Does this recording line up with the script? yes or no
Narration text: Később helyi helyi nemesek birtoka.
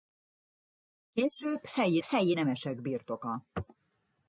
yes